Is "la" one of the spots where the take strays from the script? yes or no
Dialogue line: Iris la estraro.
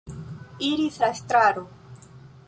no